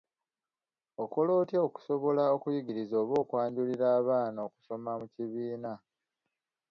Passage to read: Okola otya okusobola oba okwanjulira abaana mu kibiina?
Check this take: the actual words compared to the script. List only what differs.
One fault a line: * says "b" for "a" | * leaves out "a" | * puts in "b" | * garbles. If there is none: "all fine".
* puts in "okuyigiriza"
* puts in "okusoma"